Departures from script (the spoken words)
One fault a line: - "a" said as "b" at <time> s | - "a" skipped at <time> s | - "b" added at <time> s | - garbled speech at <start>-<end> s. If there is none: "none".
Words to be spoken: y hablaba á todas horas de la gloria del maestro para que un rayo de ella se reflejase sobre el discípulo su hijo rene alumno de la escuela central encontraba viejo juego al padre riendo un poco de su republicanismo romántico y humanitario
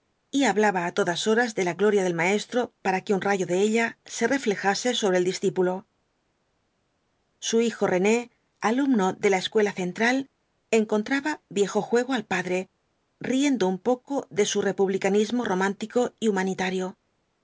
none